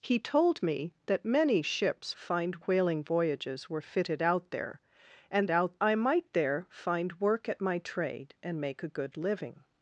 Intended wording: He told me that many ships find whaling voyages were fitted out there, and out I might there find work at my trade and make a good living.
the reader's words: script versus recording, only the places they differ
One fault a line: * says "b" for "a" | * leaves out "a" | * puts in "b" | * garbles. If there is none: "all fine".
all fine